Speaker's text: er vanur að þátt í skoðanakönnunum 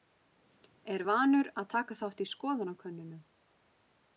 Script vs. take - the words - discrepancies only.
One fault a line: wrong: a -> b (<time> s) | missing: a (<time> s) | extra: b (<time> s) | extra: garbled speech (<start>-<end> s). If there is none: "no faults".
extra: taka (1.7 s)